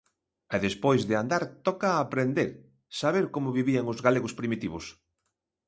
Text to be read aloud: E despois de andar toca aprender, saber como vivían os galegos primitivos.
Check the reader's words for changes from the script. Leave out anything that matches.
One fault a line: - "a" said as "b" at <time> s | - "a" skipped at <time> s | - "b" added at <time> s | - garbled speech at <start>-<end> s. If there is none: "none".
none